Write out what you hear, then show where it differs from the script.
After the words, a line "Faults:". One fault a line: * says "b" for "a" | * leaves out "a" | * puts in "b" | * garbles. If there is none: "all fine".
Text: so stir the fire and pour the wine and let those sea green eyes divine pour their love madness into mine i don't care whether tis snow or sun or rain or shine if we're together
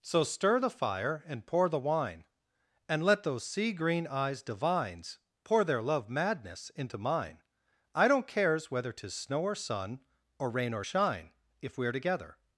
so stir the fire and pour the wine and let those sea green eyes divines pour their love madness into mine i don't cares whether tis snow or sun or rain or shine if we're together
Faults:
* says "divines" for "divine"
* says "cares" for "care"